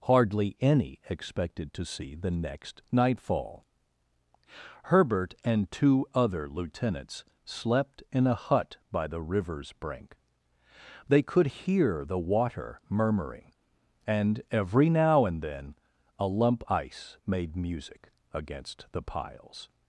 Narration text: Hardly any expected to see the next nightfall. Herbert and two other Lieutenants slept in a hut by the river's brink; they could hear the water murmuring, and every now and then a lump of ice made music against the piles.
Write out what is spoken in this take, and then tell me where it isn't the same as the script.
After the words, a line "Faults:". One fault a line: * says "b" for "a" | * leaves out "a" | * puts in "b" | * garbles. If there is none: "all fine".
Hardly any expected to see the next nightfall. Herbert and two other Lieutenants slept in a hut by the river's brink; they could hear the water murmuring, and every now and then a lump ice made music against the piles.
Faults:
* leaves out "of"